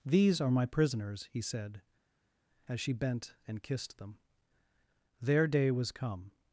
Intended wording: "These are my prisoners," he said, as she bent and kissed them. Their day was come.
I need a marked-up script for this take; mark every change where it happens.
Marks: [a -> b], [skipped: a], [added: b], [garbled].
"These are my prisoners," he said, as she bent and kissed them. Their day was come.